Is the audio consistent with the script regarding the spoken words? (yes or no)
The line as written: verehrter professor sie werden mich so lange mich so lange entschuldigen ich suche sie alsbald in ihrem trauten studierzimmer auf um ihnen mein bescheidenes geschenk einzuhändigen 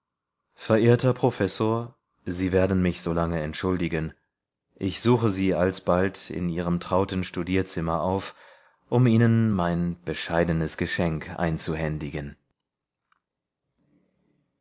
no